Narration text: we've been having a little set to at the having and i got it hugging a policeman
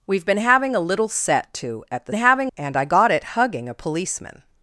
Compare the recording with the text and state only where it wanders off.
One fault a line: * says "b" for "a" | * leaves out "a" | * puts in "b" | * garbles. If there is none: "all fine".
all fine